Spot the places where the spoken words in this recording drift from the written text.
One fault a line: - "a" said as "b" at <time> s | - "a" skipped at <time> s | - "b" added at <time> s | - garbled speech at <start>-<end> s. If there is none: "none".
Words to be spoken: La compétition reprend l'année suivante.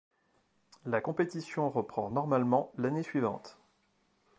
- "normalement" added at 2.1 s